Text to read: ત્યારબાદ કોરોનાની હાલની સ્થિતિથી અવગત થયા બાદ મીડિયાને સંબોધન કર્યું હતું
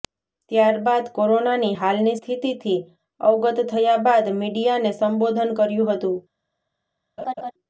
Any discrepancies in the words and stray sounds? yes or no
yes